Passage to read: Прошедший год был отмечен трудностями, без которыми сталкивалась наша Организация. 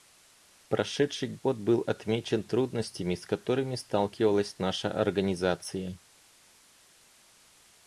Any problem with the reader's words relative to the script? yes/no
yes